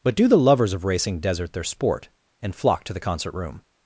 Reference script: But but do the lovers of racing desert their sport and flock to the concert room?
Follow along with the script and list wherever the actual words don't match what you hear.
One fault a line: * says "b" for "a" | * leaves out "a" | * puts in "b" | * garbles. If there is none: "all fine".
* leaves out "but"